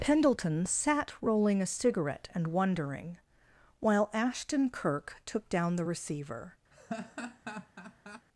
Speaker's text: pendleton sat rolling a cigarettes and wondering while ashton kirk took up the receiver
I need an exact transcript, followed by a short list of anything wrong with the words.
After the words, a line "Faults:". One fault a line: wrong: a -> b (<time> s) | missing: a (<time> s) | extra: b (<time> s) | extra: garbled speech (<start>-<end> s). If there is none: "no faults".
pendleton sat rolling a cigarette and wondering while ashton kirk took down the receiver
Faults:
wrong: cigarettes -> cigarette (1.7 s)
wrong: up -> down (5.5 s)